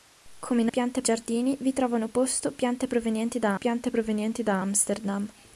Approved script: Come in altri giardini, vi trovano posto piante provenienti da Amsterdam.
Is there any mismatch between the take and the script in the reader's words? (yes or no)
yes